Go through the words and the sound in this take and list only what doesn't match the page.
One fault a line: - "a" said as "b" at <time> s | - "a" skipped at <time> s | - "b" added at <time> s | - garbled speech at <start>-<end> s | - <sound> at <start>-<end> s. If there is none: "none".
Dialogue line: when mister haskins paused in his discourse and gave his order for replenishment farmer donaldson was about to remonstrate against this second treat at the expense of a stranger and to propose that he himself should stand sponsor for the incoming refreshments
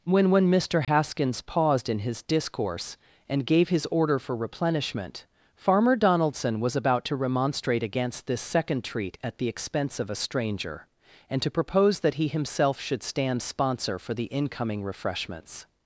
- "when" added at 0.3 s
- dropout at 0.8-0.9 s